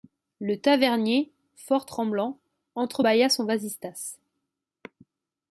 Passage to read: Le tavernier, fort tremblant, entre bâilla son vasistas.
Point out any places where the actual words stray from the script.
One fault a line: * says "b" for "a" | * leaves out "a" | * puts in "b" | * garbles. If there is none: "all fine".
all fine